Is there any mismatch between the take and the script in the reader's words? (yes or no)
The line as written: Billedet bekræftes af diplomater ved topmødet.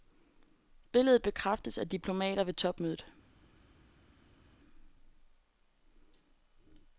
no